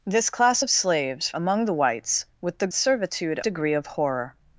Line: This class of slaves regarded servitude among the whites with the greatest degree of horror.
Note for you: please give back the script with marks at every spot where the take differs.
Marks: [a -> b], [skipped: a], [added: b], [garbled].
This class of slaves [skipped: regarded servitude] among the whites with the [greatest -> servitude] degree of horror.